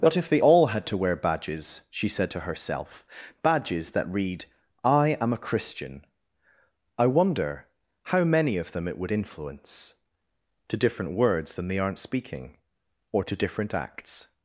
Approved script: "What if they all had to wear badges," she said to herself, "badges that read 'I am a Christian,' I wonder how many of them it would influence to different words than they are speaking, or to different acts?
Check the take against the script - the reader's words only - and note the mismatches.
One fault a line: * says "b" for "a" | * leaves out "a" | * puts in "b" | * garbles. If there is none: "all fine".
* says "aren't" for "are"